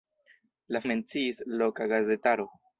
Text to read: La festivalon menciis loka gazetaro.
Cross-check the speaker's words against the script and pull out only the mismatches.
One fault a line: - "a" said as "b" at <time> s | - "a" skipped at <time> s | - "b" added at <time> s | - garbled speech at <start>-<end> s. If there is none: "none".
- "festivalon" skipped at 0.8 s